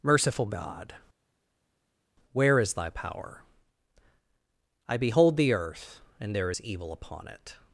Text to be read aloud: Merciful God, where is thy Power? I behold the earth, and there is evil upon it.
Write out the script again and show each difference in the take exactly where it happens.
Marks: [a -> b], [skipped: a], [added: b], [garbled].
Merciful God, where is thy Power? I behold the earth, and there is evil upon it.